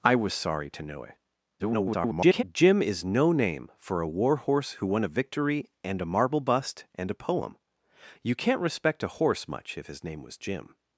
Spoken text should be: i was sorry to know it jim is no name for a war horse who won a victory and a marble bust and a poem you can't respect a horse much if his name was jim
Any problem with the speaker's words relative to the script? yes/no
yes